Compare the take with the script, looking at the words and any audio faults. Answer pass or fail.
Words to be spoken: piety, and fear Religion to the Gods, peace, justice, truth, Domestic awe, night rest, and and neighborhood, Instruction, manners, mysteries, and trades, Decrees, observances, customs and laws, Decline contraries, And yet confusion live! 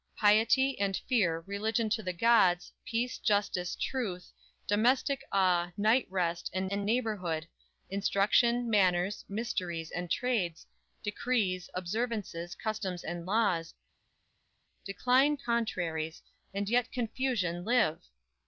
pass